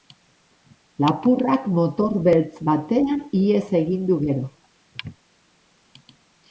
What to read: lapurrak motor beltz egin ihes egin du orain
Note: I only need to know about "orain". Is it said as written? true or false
false